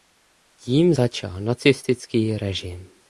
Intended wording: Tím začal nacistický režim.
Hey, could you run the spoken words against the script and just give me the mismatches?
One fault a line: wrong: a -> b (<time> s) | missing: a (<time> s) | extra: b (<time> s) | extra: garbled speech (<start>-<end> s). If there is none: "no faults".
no faults